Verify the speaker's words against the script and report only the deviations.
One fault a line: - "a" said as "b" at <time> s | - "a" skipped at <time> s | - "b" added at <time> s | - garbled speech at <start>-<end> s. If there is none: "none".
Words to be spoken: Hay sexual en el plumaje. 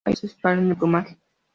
none